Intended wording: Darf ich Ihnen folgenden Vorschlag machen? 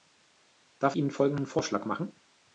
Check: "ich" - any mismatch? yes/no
yes